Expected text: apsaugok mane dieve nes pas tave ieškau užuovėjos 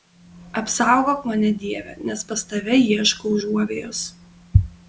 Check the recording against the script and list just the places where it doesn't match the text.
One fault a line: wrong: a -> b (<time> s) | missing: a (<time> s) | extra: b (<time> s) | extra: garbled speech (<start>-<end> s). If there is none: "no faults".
no faults